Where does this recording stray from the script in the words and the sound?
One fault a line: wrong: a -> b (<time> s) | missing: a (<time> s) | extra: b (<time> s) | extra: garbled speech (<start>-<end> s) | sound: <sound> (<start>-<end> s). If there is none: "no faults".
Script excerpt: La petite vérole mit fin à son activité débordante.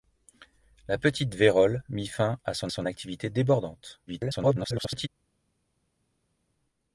extra: son (2.7 s)
extra: garbled speech (4.1-5.1 s)